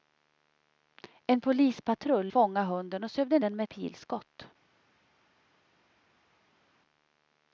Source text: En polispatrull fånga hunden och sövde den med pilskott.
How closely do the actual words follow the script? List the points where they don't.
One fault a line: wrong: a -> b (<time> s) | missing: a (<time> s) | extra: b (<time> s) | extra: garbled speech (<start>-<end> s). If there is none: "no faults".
no faults